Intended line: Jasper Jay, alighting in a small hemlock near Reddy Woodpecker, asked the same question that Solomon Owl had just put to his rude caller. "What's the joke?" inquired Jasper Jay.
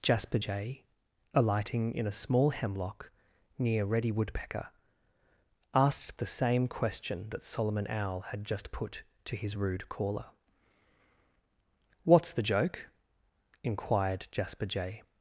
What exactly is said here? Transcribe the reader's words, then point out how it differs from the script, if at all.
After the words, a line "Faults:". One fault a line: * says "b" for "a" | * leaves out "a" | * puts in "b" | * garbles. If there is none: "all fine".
Jasper Jay, alighting in a small hemlock near Reddy Woodpecker, asked the same question that Solomon Owl had just put to his rude caller. "What's the joke?" inquired Jasper Jay.
Faults:
all fine